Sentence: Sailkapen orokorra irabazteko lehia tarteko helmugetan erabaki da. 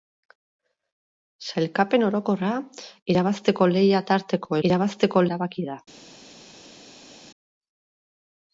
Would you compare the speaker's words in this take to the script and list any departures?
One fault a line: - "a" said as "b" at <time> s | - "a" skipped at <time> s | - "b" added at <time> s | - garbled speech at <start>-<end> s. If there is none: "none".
- "helmugetan" said as "irabazteko" at 4.7 s